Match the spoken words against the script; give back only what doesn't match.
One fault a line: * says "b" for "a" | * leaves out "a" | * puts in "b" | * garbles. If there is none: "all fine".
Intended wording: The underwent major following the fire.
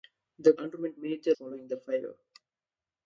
all fine